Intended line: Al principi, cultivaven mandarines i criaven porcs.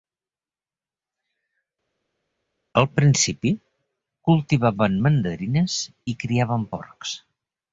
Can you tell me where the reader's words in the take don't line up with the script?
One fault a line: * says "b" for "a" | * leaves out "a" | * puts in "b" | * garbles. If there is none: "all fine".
all fine